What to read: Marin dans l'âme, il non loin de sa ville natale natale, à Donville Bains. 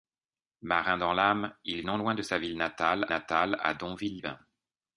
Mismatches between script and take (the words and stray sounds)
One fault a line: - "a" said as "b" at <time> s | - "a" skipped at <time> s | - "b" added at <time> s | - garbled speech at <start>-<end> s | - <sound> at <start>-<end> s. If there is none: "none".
none